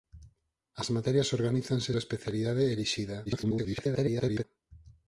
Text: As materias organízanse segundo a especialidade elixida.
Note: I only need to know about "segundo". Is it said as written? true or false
false